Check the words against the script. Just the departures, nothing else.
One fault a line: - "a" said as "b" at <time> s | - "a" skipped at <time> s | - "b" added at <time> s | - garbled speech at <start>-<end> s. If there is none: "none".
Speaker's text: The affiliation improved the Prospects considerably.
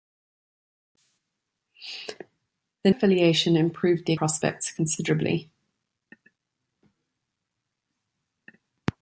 none